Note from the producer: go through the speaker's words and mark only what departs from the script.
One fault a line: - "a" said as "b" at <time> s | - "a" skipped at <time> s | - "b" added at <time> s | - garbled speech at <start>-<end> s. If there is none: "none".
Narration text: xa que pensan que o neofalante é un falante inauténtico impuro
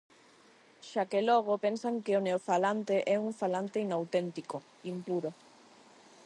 - "logo" added at 1.3 s